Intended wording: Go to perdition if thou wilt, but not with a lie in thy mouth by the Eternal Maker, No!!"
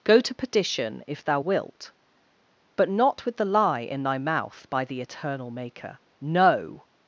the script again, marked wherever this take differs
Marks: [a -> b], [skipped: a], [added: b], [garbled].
Go to perdition if thou wilt, but not with [a -> the] lie in thy mouth by the Eternal Maker, No!!"